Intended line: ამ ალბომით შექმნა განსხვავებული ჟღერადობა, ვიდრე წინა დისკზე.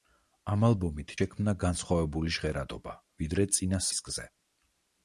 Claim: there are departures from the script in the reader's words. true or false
false